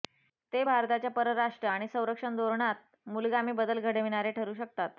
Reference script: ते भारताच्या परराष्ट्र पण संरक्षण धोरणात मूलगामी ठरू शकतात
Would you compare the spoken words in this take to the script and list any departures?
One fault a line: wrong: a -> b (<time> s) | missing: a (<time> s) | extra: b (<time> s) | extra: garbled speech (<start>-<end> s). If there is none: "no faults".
wrong: पण -> आणि (1.6 s)
extra: बदल घडविणारे (3.5 s)